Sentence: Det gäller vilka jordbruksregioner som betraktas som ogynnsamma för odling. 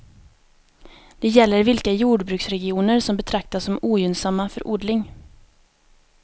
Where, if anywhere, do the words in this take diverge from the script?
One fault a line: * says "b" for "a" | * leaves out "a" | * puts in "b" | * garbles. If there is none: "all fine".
all fine